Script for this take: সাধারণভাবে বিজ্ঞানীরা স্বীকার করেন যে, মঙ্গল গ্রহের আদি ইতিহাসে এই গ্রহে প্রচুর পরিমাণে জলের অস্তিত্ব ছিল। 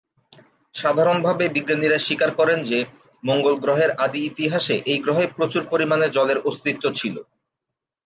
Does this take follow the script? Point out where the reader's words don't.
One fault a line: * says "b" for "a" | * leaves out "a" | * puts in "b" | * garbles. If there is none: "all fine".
all fine